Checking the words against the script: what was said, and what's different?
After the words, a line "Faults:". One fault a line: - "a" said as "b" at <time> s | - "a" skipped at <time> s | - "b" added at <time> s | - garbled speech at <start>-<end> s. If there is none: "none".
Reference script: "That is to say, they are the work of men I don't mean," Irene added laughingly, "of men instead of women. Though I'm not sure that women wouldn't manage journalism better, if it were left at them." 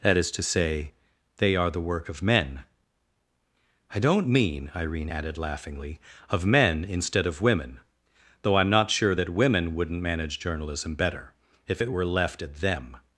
"That is to say, they are the work of men I don't mean," Irene added laughingly, "of men instead of women. Though I'm not sure that women wouldn't manage journalism better, if it were left at them."
Faults:
none